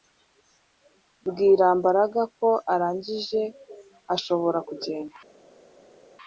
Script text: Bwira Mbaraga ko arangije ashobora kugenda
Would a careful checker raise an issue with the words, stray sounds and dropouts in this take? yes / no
no